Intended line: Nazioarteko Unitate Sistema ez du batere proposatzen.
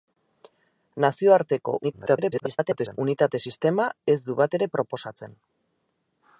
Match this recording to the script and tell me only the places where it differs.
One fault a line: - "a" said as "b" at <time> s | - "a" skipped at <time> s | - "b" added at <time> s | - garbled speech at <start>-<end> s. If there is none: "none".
- garbled speech at 1.8-3.0 s